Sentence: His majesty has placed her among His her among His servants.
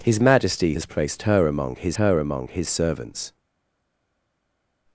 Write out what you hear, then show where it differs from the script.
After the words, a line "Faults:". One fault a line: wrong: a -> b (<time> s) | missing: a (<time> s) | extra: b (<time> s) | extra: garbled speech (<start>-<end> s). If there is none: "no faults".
His majesty has placed her among His her among His servants.
Faults:
no faults